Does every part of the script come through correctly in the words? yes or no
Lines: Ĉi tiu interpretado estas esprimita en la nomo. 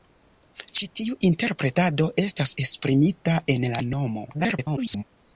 no